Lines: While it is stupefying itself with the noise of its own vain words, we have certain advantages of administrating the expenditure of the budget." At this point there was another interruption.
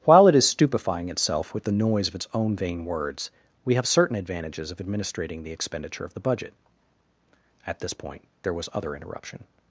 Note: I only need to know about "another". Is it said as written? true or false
false